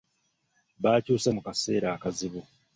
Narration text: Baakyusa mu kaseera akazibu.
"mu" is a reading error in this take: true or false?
false